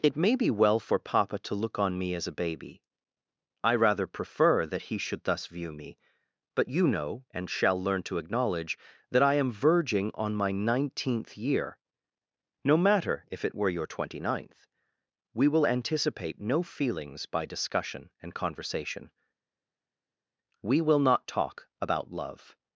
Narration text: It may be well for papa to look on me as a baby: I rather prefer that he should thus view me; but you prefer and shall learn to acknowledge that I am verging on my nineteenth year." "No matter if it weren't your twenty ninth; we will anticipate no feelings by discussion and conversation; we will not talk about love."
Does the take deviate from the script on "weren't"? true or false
true